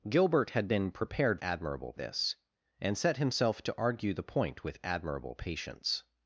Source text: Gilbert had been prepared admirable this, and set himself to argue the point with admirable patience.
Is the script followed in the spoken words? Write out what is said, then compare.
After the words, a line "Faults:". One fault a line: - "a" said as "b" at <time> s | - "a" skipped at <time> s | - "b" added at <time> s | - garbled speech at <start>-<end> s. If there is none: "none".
Gilbert had been prepared admirable this, and set himself to argue the point with admirable patience.
Faults:
none